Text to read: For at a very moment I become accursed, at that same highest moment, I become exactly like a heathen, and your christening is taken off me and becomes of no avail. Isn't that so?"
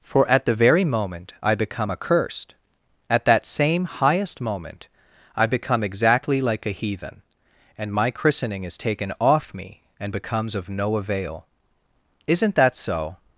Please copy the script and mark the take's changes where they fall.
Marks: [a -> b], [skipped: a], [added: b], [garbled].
For at [a -> the] very moment I become accursed, at that same highest moment, I become exactly like a heathen, and [your -> my] christening is taken off me and becomes of no avail. Isn't that so?"